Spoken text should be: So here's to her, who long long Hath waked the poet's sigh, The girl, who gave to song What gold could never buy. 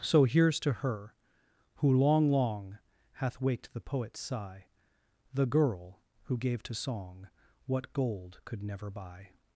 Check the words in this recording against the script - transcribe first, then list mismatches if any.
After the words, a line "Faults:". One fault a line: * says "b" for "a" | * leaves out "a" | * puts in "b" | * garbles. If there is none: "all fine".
So here's to her, who long long Hath waked the poet's sigh, The girl, who gave to song What gold could never buy.
Faults:
all fine